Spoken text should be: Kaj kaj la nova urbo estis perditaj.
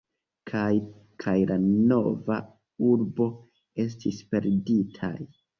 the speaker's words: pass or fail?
pass